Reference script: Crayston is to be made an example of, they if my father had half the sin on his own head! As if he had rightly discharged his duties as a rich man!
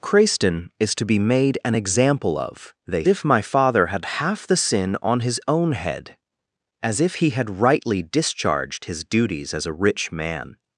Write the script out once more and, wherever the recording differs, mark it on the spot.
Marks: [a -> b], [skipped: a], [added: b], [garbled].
Crayston is to be made an example of, they if my father had half the sin on his own head! As if he had rightly discharged his duties as a rich man!